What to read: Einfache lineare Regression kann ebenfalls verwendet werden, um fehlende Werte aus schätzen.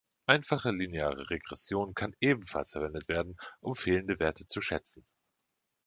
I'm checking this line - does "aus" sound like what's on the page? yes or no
no